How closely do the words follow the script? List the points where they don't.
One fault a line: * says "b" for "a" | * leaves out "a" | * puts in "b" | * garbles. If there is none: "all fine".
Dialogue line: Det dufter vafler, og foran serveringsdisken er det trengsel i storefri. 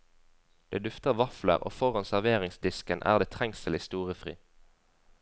all fine